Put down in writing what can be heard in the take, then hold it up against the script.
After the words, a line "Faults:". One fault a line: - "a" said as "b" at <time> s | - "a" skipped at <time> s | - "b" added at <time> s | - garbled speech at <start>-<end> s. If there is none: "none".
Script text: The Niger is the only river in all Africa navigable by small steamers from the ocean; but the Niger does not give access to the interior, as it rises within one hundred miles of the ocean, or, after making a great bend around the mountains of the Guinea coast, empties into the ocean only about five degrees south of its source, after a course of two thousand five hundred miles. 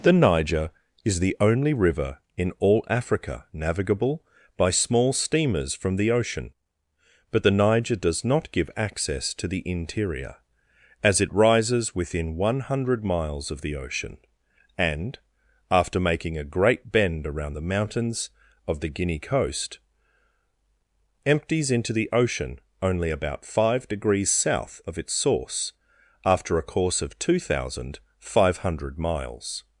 The Niger is the only river in all Africa navigable by small steamers from the ocean; but the Niger does not give access to the interior, as it rises within one hundred miles of the ocean, and, after making a great bend around the mountains of the Guinea coast, empties into the ocean only about five degrees south of its source, after a course of two thousand five hundred miles.
Faults:
- "or" said as "and" at 14.8 s